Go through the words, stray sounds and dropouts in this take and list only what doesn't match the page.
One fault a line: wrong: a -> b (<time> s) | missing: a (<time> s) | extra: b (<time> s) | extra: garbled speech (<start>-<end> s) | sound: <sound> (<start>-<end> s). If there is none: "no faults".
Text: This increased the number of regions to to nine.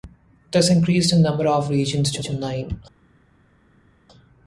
no faults